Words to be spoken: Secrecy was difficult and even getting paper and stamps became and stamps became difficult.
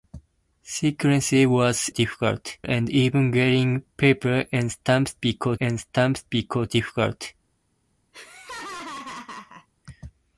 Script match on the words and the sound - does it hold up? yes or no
no